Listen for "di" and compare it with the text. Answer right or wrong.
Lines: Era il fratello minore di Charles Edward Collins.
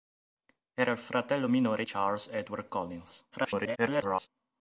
wrong